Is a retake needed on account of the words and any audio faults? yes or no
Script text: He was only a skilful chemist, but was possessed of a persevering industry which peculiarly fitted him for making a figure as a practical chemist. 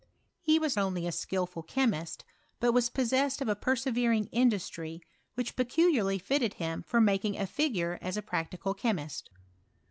no